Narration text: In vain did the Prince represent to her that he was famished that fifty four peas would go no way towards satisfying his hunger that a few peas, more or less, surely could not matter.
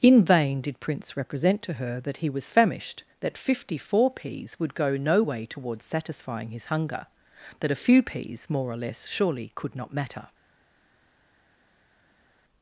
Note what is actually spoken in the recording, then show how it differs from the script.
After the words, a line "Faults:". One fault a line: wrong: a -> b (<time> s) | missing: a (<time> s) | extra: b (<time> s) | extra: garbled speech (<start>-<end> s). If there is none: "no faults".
In vain did Prince represent to her that he was famished that fifty four peas would go no way towards satisfying his hunger that a few peas, more or less, surely could not matter.
Faults:
missing: the (0.8 s)